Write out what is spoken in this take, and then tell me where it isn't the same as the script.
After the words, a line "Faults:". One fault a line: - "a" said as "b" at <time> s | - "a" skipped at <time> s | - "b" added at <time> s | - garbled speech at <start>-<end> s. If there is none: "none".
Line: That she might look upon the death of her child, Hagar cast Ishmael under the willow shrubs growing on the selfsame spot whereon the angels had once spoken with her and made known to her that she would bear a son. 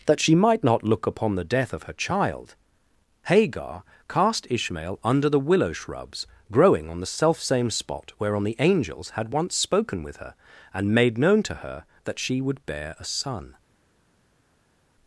That she might not look upon the death of her child, Hagar cast Ishmael under the willow shrubs growing on the selfsame spot whereon the angels had once spoken with her and made known to her that she would bear a son.
Faults:
- "not" added at 0.6 s